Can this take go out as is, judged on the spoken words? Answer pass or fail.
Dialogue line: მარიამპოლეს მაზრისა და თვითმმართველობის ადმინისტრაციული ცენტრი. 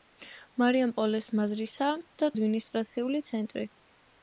fail